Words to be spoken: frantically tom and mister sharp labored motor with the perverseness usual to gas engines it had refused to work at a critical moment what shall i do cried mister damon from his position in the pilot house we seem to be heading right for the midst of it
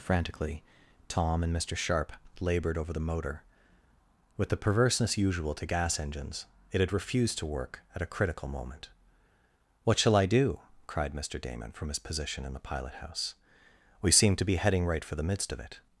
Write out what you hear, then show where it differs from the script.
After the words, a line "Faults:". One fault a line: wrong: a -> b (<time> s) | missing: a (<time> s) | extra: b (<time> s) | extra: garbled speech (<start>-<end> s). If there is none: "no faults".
frantically tom and mister sharp labored over the motor with the perverseness usual to gas engines it had refused to work at a critical moment what shall i do cried mister damon from his position in the pilot house we seem to be heading right for the midst of it
Faults:
extra: over the (2.8 s)